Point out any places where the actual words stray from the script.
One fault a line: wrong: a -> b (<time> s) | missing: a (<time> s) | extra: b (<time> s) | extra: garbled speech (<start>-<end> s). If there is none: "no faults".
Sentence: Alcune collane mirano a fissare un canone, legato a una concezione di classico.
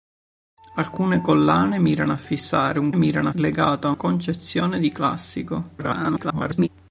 wrong: canone -> mirano (2.9 s)
missing: una (3.9 s)
extra: garbled speech (5.8-6.7 s)